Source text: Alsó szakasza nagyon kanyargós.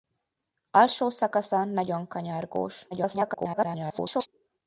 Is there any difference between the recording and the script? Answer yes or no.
yes